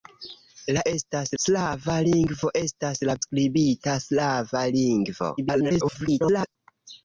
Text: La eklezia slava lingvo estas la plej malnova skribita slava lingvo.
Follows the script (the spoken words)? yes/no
no